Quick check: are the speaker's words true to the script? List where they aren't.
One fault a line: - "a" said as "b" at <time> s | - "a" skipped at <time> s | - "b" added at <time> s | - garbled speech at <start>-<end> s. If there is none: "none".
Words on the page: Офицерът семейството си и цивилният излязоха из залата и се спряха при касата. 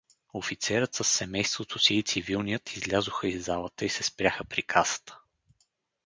- "със" added at 0.9 s